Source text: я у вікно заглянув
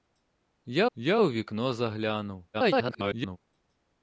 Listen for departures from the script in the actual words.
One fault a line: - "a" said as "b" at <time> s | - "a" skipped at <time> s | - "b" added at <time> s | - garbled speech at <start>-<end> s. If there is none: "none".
- "я" added at 0.9 s
- garbled speech at 2.5-3.4 s